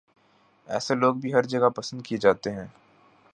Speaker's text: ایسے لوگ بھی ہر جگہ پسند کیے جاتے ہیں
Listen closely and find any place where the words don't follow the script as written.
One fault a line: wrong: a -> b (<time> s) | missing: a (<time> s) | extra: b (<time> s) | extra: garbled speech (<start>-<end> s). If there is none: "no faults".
no faults